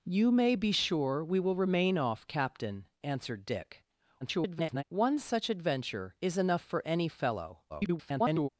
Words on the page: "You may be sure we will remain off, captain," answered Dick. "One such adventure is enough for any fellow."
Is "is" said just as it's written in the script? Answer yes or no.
yes